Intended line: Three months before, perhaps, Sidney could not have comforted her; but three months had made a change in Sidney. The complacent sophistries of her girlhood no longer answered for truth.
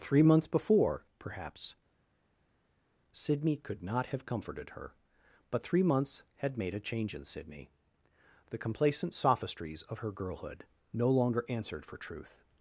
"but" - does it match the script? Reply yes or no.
yes